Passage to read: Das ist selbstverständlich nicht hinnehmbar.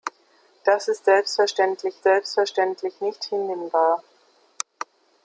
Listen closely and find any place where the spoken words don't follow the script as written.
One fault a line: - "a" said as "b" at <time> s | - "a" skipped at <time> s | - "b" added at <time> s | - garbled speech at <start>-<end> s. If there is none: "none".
- "selbstverständlich" added at 2.0 s